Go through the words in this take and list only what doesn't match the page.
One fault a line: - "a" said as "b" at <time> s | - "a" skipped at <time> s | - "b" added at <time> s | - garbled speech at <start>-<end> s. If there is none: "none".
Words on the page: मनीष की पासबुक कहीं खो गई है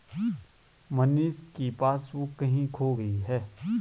none